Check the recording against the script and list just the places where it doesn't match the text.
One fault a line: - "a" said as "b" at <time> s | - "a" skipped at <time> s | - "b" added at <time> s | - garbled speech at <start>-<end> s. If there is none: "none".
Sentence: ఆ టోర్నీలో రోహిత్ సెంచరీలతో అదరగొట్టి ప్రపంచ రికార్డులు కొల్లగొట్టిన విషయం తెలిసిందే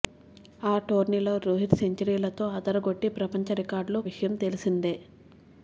- "కొల్లగొట్టిన" skipped at 4.0 s